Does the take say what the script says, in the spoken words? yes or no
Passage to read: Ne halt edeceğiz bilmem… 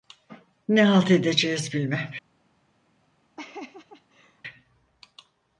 yes